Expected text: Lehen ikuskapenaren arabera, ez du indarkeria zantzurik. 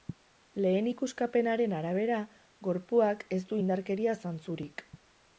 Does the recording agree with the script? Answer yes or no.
no